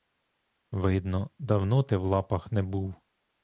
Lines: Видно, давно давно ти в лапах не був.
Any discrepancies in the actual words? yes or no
yes